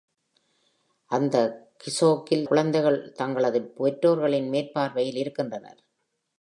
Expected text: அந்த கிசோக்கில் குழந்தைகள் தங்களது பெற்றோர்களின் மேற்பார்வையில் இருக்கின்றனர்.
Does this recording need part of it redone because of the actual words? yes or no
no